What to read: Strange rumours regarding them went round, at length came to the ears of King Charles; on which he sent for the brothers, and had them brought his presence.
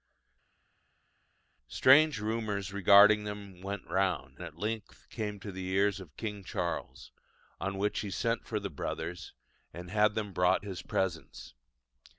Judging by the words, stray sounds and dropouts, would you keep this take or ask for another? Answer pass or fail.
pass